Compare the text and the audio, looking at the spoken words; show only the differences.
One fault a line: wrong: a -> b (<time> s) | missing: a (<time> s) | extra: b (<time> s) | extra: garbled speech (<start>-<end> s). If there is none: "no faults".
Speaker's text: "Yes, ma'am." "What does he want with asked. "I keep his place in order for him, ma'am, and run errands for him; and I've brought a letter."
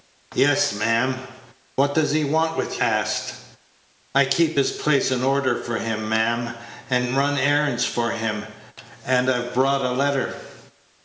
no faults